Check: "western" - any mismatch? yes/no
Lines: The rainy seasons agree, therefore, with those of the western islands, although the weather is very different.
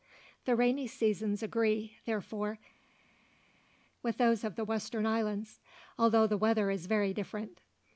no